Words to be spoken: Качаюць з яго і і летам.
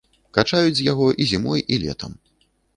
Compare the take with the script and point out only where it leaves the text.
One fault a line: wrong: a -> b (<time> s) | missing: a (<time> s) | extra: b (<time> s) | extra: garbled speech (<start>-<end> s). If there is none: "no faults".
extra: зімой (1.3 s)